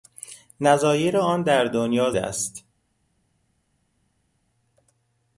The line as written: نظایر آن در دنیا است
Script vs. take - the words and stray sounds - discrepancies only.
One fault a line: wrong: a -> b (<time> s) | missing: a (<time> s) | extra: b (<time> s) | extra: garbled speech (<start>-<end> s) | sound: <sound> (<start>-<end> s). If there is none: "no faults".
no faults